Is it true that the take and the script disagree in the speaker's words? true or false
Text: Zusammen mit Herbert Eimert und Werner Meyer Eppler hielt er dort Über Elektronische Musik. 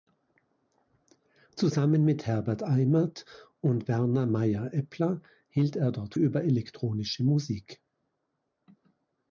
false